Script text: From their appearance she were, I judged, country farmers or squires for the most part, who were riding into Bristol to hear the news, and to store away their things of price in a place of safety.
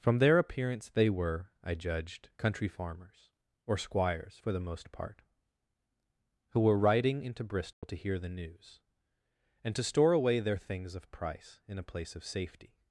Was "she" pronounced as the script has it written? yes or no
no